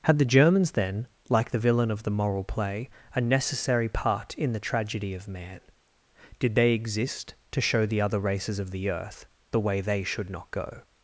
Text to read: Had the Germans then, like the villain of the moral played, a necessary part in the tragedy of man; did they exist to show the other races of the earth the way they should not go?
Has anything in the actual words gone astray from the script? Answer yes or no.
yes